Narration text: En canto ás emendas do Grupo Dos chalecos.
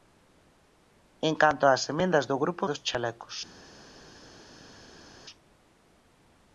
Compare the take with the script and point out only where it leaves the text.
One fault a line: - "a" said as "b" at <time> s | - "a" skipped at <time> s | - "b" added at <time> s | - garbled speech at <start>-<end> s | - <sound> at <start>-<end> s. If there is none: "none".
none